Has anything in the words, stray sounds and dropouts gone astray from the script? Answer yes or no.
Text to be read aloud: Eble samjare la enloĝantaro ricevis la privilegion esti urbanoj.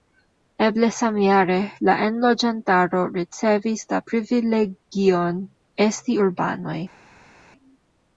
no